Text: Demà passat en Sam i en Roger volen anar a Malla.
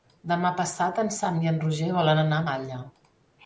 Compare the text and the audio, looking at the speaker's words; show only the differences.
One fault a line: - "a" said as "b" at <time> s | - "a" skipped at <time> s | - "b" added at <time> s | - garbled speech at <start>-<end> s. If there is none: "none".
none